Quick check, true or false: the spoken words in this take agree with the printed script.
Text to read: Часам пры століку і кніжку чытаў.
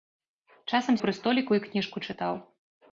true